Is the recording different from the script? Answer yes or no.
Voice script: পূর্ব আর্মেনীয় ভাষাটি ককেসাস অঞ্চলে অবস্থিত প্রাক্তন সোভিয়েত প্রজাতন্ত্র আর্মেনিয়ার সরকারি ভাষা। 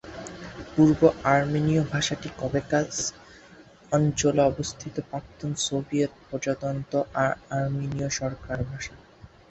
no